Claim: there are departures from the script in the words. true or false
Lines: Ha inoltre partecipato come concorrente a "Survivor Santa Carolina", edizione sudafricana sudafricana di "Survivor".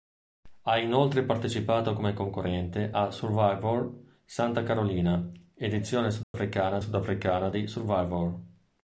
false